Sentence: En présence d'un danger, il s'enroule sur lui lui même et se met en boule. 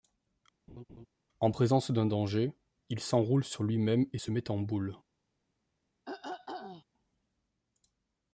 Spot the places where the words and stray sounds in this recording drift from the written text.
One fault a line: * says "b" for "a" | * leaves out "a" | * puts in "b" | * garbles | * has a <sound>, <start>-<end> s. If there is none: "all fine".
* has a laugh, 0.7-1.1 s
* leaves out "lui"
* has a throat clearing, 6.1-6.8 s